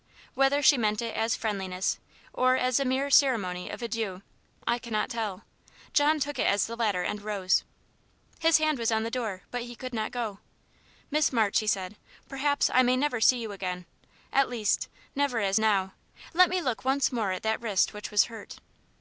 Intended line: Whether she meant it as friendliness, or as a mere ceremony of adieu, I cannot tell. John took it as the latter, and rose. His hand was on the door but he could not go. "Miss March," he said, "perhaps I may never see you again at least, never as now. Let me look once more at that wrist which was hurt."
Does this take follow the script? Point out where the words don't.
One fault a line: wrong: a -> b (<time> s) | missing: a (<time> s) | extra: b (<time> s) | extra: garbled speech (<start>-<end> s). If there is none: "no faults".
no faults